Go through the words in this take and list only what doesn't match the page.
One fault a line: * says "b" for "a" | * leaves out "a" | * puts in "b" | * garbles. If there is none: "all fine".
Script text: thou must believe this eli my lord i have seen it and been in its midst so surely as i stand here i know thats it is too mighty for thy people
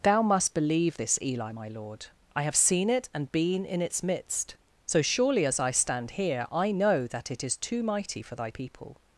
* says "that" for "thats"